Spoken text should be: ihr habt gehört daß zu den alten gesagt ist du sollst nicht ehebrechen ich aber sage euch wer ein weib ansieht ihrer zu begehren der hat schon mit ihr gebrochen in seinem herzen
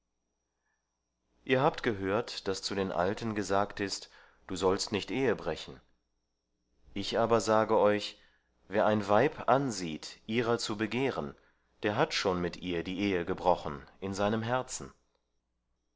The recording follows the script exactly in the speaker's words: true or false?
false